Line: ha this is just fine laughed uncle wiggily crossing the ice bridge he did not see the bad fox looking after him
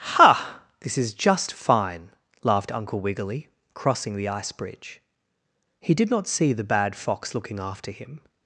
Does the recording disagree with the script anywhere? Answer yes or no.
no